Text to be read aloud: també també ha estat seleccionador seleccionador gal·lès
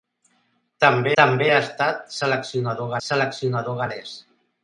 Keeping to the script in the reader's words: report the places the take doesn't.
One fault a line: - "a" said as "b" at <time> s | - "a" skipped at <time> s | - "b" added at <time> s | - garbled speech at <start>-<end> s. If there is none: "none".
none